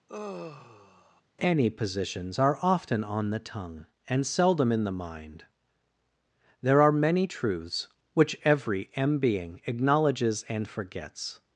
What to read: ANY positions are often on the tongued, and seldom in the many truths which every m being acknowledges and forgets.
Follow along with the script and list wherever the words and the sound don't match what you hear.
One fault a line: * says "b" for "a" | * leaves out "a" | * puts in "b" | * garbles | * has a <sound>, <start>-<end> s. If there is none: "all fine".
* has a sigh, 0.1-1.2 s
* says "tongue" for "tongued"
* puts in "mind there are"